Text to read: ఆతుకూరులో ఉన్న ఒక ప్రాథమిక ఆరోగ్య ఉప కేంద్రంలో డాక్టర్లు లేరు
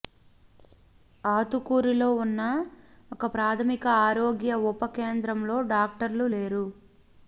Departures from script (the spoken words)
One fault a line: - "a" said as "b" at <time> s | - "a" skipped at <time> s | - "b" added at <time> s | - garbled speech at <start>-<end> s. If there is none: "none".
none